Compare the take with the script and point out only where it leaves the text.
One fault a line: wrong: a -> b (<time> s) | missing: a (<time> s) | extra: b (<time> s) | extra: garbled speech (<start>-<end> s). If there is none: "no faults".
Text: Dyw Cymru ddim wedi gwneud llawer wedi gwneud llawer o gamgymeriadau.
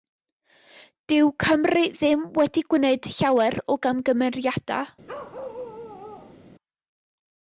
missing: wedi gwneud llawer (3.6 s)